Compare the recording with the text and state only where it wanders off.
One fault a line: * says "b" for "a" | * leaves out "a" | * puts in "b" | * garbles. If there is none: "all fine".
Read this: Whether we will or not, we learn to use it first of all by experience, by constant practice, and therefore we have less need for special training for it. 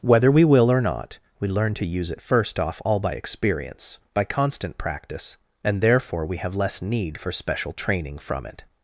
* says "off" for "of"
* says "from" for "for"